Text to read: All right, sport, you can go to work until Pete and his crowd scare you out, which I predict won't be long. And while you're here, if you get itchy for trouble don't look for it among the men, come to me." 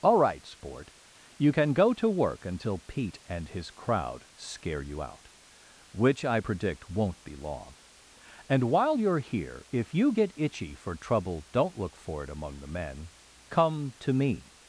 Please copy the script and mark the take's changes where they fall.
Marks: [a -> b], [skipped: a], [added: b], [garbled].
All right, sport, you can go to work until Pete and his crowd scare you out, which I predict won't be long. And while you're here, if you get itchy for trouble don't look for it among the men, come to me."